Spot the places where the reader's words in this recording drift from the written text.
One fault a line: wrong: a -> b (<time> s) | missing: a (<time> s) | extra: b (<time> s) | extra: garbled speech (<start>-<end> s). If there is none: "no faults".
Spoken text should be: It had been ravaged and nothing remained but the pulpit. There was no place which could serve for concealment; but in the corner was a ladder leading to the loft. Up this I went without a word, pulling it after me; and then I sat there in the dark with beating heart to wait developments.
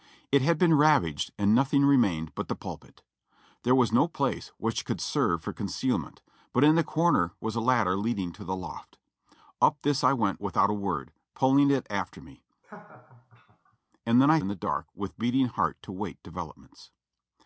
missing: sat there (14.4 s)